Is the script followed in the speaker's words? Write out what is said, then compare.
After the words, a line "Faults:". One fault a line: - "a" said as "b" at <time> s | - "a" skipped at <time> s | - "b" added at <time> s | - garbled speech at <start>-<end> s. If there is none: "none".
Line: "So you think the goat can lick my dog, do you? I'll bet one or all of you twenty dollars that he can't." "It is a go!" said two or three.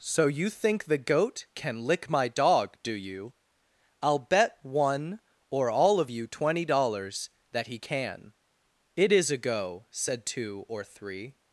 "So you think the goat can lick my dog, do you? I'll bet one or all of you twenty dollars that he can." "It is a go!" said two or three.
Faults:
- "can't" said as "can" at 7.8 s